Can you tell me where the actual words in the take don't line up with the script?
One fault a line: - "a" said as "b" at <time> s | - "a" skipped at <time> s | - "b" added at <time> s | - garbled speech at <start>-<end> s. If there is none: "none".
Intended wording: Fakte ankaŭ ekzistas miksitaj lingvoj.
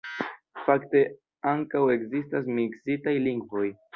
none